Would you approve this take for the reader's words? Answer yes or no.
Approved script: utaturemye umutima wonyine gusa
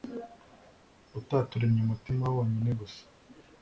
yes